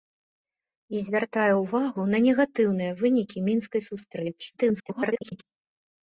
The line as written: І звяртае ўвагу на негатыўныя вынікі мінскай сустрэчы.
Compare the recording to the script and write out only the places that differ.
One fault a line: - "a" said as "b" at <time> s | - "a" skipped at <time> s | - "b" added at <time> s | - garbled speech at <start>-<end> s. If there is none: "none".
- garbled speech at 4.6-5.4 s